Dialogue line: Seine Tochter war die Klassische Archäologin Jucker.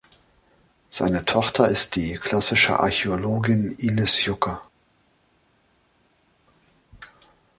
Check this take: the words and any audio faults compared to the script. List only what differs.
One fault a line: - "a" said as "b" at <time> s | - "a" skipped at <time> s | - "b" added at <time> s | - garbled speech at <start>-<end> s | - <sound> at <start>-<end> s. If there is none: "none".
- "war" said as "ist" at 1.7 s
- "Ines" added at 3.8 s